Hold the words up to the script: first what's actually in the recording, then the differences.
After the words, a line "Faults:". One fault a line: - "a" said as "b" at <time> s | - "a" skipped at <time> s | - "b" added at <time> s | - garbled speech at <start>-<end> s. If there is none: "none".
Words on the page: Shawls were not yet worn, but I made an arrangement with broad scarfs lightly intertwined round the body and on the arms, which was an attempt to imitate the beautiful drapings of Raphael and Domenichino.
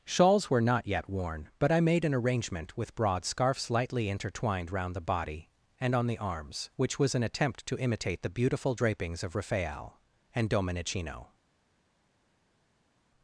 Shawls were not yet worn, but I made an arrangement with broad scarfs lightly intertwined round the body and on the arms, which was an attempt to imitate the beautiful drapings of Raphael and Domenichino.
Faults:
none